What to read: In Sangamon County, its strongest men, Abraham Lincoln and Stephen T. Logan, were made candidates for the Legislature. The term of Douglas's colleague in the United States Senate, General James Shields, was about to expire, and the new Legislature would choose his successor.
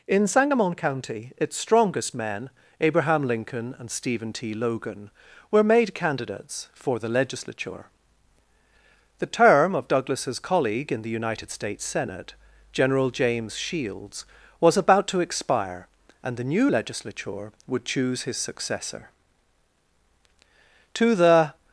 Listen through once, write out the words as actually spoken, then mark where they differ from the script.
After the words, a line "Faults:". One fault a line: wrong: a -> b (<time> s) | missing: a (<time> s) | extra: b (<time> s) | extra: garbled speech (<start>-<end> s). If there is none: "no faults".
In Sangamon County, its strongest men, Abraham Lincoln and Stephen T. Logan, were made candidates for the Legislature. The term of Douglas's colleague in the United States Senate, General James Shields, was about to expire, and the new Legislature would choose his successor. To the
Faults:
extra: To the (20.9 s)